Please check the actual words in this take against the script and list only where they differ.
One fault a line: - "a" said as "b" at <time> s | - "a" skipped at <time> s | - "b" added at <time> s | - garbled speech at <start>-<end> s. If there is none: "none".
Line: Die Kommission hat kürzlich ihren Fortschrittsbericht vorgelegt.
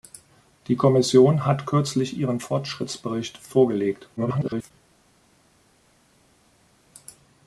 - garbled speech at 4.2-4.7 s